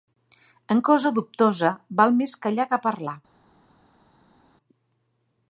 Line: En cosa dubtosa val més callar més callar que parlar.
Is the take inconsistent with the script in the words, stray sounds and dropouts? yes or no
yes